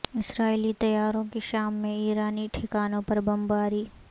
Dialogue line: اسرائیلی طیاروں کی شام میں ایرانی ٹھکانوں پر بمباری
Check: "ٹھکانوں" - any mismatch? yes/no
no